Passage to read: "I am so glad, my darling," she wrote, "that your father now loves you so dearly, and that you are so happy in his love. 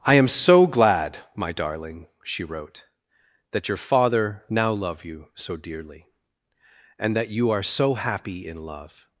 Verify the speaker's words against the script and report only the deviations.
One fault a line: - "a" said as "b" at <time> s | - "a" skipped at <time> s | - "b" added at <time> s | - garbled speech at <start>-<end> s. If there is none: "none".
- "loves" said as "love" at 4.7 s
- "his" skipped at 8.7 s